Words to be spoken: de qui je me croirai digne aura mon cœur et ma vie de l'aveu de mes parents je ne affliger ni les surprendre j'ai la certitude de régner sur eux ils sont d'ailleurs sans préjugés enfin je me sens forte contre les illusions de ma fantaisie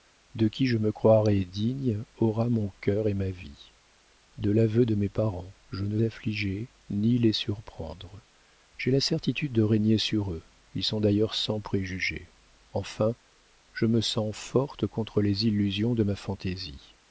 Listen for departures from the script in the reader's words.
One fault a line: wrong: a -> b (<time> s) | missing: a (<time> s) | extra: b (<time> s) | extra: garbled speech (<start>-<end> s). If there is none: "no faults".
no faults